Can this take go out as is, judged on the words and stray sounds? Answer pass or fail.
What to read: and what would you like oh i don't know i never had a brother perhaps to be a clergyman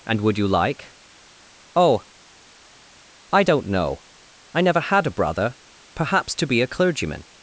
fail